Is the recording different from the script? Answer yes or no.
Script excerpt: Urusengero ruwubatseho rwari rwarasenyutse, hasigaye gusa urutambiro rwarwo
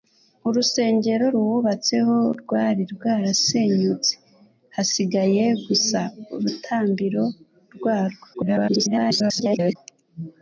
yes